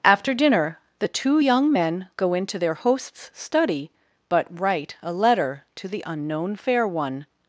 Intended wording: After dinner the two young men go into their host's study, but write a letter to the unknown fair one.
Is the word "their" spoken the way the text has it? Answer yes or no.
yes